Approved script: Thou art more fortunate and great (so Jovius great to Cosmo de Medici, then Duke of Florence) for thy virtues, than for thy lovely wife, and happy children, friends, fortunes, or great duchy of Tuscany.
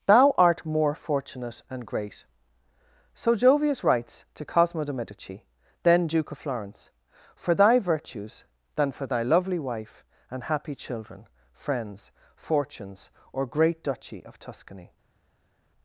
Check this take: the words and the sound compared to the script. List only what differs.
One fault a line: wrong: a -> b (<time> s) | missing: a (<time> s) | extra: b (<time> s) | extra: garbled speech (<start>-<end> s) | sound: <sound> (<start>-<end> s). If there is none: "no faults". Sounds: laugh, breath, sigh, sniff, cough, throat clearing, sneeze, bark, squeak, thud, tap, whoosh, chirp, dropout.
wrong: great -> writes (3.8 s)